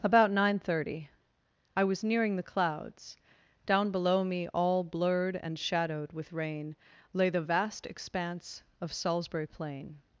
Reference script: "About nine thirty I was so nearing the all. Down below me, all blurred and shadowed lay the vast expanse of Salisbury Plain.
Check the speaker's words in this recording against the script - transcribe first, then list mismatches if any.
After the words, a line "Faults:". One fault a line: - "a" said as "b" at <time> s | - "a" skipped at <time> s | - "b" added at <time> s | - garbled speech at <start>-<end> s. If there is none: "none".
"About nine thirty I was nearing the clouds. Down below me, all blurred and shadowed with rain, lay the vast expanse of Salisbury Plain.
Faults:
- "so" skipped at 2.0 s
- "all" said as "clouds" at 2.4 s
- "with rain" added at 6.1 s